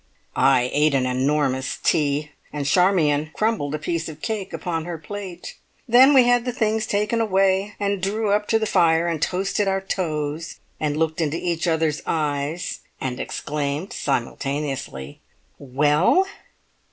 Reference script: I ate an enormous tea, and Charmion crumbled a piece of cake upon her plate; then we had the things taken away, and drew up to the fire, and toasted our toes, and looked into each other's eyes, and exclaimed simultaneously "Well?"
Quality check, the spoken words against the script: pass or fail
pass